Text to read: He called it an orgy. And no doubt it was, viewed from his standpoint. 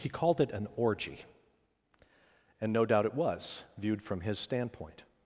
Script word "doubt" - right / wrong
right